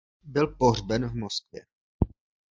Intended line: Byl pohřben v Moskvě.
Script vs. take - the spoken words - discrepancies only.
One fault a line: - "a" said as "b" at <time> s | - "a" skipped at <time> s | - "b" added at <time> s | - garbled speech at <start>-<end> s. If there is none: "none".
none